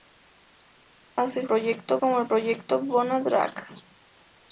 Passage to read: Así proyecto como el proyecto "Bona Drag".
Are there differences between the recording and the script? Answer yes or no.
no